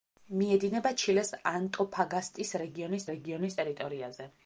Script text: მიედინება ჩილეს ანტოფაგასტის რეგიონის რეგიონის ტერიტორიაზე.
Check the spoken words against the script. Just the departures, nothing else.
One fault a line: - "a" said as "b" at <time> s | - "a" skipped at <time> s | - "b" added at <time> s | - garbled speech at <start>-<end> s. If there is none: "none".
none